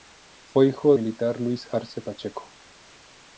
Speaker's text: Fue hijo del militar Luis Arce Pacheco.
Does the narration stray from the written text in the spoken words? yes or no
yes